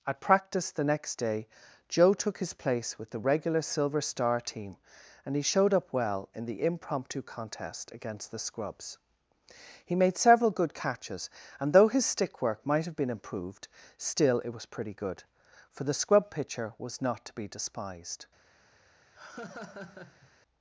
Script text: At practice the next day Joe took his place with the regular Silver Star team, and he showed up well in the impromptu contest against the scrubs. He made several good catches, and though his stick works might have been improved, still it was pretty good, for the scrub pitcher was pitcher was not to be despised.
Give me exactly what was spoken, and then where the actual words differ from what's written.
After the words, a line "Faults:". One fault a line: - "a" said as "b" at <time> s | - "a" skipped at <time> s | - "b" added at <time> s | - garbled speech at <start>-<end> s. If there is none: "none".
At practice the next day Joe took his place with the regular Silver Star team, and he showed up well in the impromptu contest against the scrubs. He made several good catches, and though his stick work might have been improved, still it was pretty good, for the scrub pitcher was not to be despised.
Faults:
- "works" said as "work" at 12.4 s
- "pitcher was" skipped at 17.0 s